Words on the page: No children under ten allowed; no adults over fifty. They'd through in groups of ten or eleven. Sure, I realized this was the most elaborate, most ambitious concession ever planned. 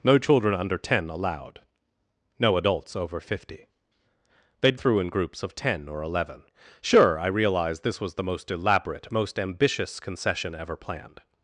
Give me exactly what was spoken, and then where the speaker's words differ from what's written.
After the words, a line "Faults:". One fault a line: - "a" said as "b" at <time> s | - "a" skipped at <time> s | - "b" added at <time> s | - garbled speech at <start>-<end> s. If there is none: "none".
No children under ten allowed; no adults over fifty. They'd through in groups of ten or eleven. Sure, I realized this was the most elaborate, most ambitious concession ever planned.
Faults:
none